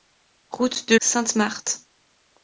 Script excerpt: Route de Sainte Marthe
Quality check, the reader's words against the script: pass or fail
pass